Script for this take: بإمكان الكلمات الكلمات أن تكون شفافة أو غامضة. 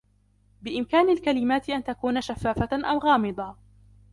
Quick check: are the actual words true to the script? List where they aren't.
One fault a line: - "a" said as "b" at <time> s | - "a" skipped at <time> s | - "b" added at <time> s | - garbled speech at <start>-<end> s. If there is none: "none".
- "الكلمات" skipped at 1.7 s